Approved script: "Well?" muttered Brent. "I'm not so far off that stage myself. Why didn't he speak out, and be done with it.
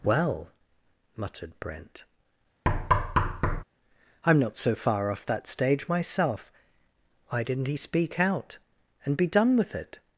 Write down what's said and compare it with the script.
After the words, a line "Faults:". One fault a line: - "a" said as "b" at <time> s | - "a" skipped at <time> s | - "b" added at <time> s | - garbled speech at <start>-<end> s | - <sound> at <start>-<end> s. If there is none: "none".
"Well?" muttered Brent. "I'm not so far off that stage myself. Why didn't he speak out, and be done with it.
Faults:
- thud at 2.7-3.6 s